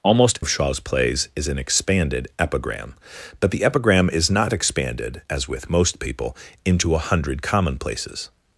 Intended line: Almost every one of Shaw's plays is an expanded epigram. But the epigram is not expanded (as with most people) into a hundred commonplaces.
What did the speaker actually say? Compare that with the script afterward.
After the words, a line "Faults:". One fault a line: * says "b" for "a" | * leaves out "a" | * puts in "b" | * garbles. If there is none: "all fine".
Almost of Shaw's plays is an expanded epigram. But the epigram is not expanded (as with most people) into a hundred commonplaces.
Faults:
* leaves out "every one"